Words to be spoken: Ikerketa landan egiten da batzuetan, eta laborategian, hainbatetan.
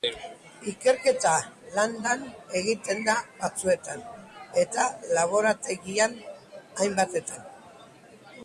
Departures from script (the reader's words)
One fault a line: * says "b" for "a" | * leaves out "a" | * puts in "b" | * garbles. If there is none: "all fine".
all fine